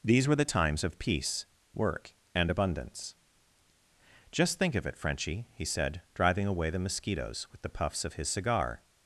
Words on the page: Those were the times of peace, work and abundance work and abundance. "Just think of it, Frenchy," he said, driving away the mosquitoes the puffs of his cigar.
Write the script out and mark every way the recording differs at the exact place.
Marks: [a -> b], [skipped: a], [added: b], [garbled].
[Those -> These] were the times of peace, work and abundance [skipped: work and abundance.] "Just think of it, Frenchy," he said, driving away the mosquitoes [added: with] the puffs of his cigar.